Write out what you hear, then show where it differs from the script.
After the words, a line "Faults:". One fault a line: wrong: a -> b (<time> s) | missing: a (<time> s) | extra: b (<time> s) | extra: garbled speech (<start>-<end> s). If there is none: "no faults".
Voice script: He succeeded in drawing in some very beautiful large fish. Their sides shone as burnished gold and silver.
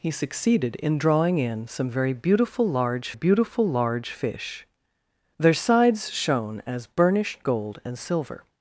He succeeded in drawing in some very beautiful large beautiful large fish. Their sides shone as burnished gold and silver.
Faults:
extra: beautiful large (3.1 s)